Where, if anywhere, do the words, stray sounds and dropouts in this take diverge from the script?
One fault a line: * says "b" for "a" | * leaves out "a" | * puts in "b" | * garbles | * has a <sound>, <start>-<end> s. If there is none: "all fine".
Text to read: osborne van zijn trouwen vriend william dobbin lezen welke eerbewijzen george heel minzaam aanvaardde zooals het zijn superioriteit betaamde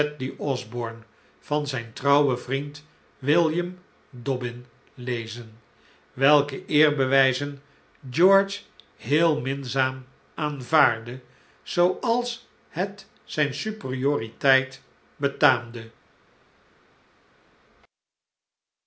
all fine